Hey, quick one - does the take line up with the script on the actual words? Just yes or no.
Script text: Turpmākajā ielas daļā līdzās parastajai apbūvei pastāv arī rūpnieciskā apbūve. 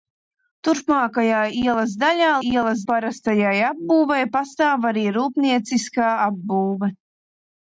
no